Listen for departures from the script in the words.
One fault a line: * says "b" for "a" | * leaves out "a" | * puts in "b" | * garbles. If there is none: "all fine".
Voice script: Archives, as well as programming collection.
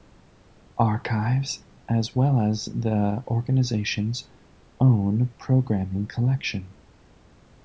* puts in "the organization's own"